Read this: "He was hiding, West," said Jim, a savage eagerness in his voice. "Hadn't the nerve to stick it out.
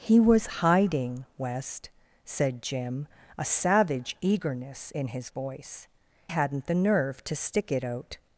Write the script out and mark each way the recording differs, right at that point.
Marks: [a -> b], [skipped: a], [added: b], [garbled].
"He was hiding, West," said Jim, a savage eagerness in his voice. "Hadn't the nerve to stick it out.